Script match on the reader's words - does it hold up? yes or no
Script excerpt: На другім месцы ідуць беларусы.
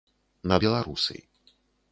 no